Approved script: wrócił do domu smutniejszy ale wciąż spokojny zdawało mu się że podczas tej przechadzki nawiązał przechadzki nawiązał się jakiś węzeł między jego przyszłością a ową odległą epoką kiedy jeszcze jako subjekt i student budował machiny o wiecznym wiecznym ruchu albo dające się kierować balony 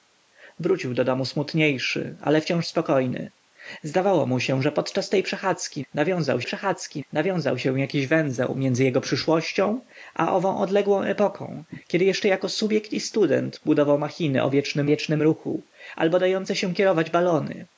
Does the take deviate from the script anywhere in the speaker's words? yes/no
no